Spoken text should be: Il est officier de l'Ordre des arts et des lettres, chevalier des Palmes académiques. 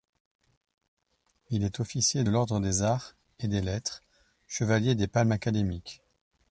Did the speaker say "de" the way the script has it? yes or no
no